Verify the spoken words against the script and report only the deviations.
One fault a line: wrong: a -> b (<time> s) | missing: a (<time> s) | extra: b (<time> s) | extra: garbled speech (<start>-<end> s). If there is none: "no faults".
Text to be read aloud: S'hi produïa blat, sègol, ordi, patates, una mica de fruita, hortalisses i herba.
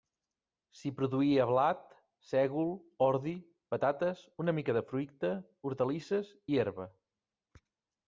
no faults